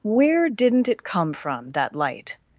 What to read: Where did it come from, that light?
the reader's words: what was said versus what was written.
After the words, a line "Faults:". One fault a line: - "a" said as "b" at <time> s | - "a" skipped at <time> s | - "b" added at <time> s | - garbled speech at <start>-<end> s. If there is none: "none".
Where didn't it come from, that light?
Faults:
- "did" said as "didn't" at 0.5 s